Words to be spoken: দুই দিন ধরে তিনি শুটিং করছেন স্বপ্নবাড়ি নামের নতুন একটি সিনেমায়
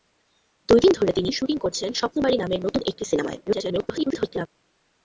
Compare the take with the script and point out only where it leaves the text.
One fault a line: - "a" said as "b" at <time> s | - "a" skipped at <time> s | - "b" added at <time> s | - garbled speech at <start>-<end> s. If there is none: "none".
- garbled speech at 3.5-4.5 s